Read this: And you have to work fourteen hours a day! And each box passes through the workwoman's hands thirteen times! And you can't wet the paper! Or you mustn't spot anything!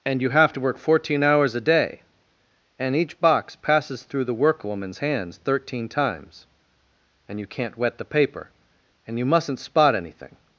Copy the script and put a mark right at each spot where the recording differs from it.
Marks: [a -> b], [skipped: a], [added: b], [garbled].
And you have to work fourteen hours a day! And each box passes through the workwoman's hands thirteen times! And you can't wet the paper! [Or -> And] you mustn't spot anything!